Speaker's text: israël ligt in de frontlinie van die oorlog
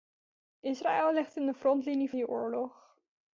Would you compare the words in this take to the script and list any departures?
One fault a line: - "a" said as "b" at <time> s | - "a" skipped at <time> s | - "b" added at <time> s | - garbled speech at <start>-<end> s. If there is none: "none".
- "van" skipped at 2.1 s